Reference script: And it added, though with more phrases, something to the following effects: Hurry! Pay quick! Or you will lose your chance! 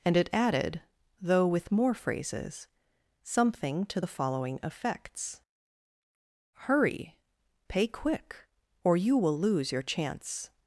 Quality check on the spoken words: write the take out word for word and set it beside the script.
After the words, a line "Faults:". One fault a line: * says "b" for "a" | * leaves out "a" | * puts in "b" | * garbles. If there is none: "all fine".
And it added, though with more phrases, something to the following effects: Hurry! Pay quick! Or you will lose your chance!
Faults:
all fine